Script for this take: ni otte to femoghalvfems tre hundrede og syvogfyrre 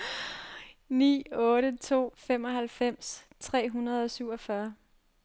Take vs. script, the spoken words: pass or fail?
pass